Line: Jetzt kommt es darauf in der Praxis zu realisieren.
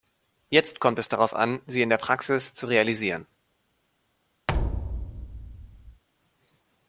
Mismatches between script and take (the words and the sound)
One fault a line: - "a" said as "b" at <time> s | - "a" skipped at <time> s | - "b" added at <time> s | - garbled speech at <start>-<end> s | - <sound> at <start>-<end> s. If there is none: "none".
- "an sie" added at 1.4 s
- thud at 4.5-6.0 s